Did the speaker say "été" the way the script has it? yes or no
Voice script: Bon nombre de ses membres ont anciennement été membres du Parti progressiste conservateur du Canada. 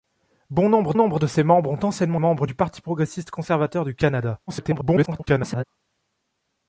no